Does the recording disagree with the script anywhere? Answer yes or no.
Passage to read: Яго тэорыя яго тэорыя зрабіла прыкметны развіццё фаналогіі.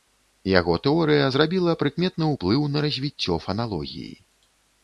yes